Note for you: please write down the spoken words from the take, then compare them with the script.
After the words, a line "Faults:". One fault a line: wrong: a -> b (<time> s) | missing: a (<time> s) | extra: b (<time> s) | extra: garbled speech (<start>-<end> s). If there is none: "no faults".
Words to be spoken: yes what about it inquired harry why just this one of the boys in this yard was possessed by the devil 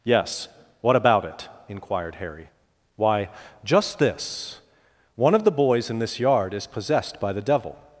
yes what about it inquired harry why just this one of the boys in this yard is possessed by the devil
Faults:
wrong: was -> is (6.5 s)